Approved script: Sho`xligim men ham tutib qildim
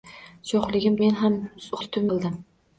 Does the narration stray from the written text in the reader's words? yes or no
no